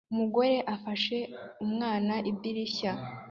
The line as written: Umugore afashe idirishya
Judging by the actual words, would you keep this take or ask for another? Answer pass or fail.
fail